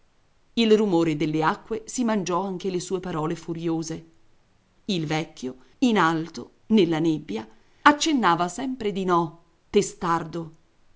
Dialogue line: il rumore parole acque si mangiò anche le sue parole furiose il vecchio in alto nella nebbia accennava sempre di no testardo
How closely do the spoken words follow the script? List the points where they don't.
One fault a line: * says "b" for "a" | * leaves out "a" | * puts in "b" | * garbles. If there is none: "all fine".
* says "delle" for "parole"